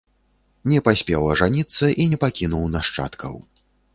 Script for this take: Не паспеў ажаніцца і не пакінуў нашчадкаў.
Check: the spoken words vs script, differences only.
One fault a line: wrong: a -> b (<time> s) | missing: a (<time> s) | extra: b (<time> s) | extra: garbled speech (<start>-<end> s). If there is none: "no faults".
no faults